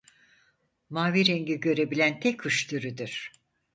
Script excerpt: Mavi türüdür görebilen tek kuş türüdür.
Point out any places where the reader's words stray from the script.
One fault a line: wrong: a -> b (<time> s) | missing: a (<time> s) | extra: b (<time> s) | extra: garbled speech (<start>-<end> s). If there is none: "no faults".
wrong: türüdür -> rengi (1.2 s)